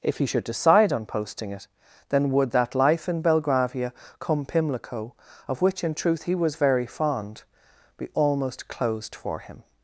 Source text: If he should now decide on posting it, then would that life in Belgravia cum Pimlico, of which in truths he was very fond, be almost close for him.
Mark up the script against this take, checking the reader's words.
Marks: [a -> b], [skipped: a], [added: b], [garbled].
If he should [skipped: now] decide on posting it, then would that life in Belgravia cum Pimlico, of which in [truths -> truth] he was very fond, be almost [close -> closed] for him.